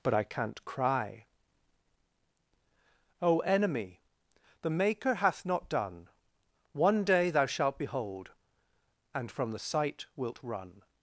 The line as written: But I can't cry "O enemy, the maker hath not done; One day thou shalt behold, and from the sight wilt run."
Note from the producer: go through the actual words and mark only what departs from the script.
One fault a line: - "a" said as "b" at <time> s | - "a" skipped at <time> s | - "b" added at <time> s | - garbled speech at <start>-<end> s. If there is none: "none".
none